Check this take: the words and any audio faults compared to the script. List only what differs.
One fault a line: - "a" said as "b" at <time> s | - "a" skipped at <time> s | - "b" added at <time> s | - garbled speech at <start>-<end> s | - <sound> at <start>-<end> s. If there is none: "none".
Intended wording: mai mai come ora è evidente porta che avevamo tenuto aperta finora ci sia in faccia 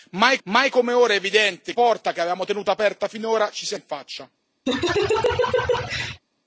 - laugh at 4.7-6.2 s